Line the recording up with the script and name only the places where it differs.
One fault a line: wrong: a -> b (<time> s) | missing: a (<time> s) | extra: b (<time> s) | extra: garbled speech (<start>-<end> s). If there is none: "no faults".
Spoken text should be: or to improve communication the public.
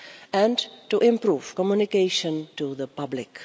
wrong: or -> and (0.3 s)
extra: to (2.6 s)